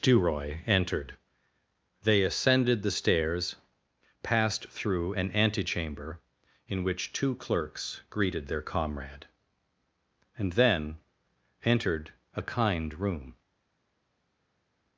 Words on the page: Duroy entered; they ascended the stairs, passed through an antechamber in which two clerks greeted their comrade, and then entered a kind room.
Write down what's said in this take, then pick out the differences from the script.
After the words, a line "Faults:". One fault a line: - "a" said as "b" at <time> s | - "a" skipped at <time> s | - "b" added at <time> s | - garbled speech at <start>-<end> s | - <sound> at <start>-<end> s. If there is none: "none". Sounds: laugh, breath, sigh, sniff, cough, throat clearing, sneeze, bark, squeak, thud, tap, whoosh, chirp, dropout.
Duroy entered; they ascended the stairs, passed through an antechamber in which two clerks greeted their comrade, and then entered a kind room.
Faults:
none